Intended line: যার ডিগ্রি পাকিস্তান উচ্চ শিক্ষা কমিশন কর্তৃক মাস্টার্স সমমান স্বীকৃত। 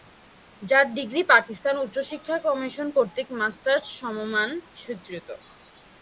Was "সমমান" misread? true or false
false